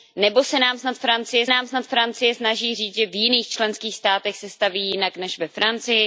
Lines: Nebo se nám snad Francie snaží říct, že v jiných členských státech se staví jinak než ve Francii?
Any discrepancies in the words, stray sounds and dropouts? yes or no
yes